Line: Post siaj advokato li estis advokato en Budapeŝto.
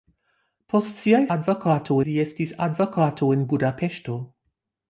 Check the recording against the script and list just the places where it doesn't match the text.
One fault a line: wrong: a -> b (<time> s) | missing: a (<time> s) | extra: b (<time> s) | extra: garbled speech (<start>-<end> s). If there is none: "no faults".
no faults